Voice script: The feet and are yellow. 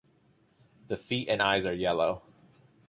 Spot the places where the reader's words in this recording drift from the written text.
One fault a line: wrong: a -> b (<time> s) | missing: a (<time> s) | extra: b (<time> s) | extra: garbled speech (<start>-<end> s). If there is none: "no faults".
extra: eyes (1.4 s)